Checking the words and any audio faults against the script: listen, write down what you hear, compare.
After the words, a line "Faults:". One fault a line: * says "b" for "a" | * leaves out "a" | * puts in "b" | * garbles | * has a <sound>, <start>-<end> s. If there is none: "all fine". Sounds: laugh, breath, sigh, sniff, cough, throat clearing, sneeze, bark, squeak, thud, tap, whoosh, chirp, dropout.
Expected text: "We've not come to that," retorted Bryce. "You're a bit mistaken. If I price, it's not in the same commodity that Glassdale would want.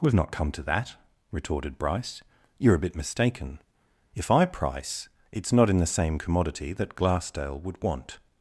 "We've not come to that," retorted Bryce. "You're a bit mistaken. If I price, it's not in the same commodity that Glassdale would want.
Faults:
all fine